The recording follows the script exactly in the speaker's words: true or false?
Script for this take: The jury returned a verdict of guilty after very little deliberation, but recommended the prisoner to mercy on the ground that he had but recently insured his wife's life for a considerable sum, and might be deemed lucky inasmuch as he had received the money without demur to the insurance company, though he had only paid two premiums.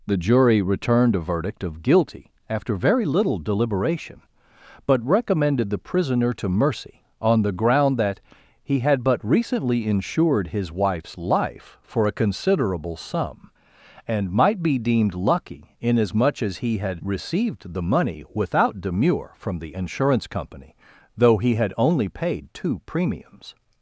false